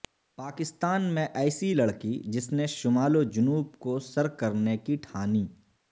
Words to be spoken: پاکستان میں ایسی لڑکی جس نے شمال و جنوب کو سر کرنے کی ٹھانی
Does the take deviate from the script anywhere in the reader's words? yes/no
no